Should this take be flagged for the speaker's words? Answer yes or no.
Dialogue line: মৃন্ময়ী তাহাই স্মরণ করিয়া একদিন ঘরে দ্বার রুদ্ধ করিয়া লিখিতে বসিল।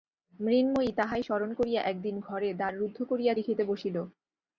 no